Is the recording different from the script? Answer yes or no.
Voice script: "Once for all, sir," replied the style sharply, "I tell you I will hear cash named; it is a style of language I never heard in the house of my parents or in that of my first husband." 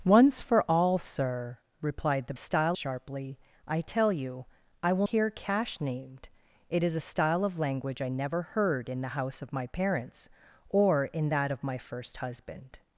no